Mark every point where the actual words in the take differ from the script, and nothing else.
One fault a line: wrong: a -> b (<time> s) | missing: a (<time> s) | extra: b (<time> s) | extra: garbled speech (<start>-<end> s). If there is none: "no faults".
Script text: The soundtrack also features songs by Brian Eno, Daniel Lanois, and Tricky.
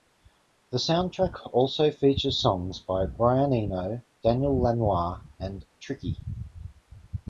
no faults